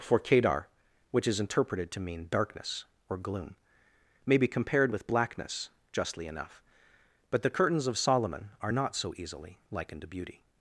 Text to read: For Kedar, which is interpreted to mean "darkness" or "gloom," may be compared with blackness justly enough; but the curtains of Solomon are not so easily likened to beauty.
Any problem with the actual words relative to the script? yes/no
no